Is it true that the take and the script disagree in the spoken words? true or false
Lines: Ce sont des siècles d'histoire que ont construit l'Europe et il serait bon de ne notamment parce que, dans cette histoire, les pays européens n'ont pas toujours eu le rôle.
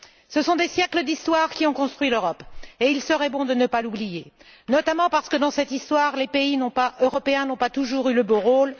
true